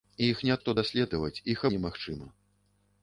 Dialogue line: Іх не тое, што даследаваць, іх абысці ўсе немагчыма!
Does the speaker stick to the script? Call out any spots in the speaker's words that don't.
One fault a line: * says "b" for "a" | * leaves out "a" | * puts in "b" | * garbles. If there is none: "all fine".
* leaves out "тое"
* leaves out "абысці ўсе"